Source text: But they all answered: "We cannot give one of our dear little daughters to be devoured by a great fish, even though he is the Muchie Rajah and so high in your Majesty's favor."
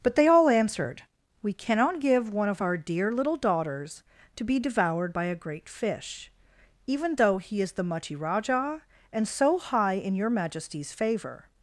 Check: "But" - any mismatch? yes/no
no